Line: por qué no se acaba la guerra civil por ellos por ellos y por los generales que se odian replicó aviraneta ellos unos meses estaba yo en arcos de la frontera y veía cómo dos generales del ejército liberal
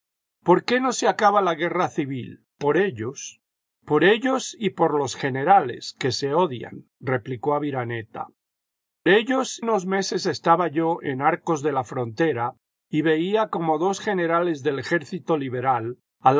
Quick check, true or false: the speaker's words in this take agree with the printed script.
true